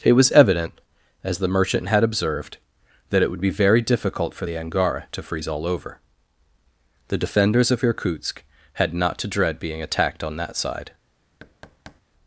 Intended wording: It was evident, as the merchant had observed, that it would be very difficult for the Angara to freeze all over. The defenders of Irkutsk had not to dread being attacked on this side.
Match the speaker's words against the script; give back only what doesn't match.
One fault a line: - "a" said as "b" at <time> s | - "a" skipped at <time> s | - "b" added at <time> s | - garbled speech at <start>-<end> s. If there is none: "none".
- "this" said as "that" at 10.4 s